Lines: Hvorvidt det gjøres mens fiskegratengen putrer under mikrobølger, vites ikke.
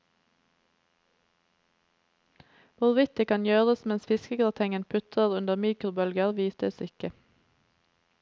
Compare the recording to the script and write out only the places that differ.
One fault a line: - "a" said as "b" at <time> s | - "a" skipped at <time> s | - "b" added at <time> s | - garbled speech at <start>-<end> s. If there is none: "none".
- "kan" added at 3.3 s